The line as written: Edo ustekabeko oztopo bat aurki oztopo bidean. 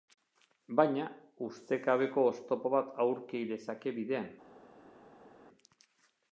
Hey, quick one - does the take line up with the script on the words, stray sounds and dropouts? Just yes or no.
no